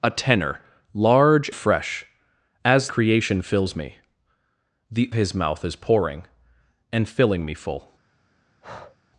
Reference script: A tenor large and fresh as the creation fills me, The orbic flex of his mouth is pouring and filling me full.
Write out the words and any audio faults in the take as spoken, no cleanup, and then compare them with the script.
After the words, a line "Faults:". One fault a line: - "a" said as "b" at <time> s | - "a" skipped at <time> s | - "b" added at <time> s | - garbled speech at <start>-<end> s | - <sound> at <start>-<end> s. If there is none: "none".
A tenor large fresh as creation fills me, The his mouth is pouring and filling me full.
Faults:
- "and" skipped at 1.5 s
- "the" skipped at 2.9 s
- "orbic flex of" skipped at 5.1 s
- breath at 8.6-9.0 s